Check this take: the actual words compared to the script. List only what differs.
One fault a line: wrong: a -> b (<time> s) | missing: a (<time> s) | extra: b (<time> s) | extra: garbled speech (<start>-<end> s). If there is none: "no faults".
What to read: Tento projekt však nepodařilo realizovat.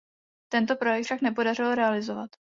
no faults